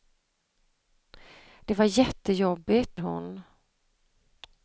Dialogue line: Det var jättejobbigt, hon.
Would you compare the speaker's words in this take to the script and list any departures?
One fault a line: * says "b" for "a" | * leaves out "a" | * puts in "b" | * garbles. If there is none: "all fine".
all fine